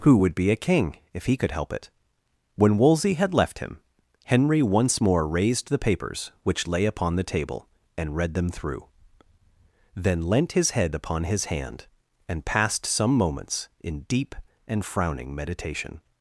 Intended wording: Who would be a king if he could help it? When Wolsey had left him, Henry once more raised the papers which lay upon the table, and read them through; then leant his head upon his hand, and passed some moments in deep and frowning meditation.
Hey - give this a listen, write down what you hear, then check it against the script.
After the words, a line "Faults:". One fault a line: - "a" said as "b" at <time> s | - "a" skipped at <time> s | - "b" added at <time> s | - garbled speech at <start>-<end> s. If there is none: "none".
Who would be a king if he could help it? When Wolsey had left him, Henry once more raised the papers which lay upon the table, and read them through; then leant his head upon his hand, and passed some moments in deep and frowning meditation.
Faults:
none